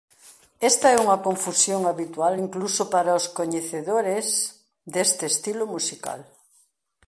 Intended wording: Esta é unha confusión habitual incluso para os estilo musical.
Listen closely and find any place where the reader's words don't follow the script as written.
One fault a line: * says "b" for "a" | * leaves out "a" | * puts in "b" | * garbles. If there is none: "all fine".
* puts in "coñecedores deste"